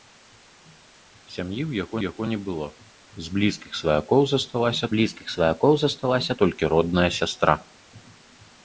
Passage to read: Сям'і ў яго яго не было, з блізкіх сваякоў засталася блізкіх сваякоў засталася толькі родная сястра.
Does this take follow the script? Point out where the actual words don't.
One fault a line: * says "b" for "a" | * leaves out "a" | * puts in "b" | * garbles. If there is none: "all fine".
all fine